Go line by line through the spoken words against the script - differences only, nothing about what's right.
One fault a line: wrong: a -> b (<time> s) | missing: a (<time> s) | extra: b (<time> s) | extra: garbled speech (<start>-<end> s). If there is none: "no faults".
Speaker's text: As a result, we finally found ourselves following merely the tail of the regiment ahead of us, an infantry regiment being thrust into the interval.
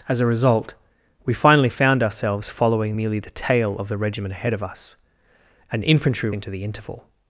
missing: regiment being thrust (6.3 s)